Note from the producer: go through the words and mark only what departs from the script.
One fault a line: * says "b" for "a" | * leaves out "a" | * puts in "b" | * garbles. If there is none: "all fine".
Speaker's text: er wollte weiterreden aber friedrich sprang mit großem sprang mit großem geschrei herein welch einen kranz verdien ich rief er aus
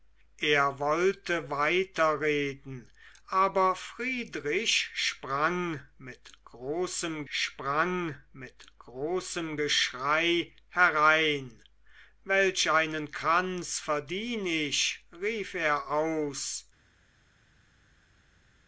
all fine